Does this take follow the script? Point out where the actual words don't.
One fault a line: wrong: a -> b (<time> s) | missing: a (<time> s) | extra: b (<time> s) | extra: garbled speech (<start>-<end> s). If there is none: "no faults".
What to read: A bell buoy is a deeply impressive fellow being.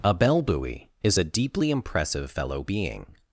no faults